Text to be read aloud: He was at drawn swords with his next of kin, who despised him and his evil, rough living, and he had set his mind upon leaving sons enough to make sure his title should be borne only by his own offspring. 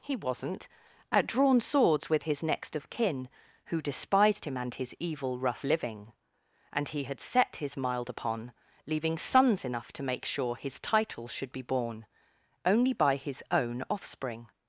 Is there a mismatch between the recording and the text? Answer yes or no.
yes